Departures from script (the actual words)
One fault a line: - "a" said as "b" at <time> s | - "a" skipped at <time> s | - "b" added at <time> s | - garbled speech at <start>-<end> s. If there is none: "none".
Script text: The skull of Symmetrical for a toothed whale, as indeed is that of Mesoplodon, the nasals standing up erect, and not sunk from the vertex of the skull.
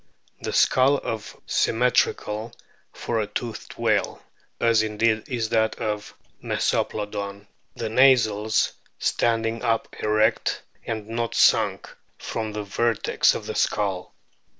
none